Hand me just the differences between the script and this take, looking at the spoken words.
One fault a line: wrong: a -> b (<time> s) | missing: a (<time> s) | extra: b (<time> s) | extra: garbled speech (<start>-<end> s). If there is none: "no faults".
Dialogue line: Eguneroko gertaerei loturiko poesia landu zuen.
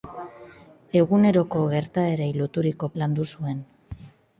missing: poesia (2.9 s)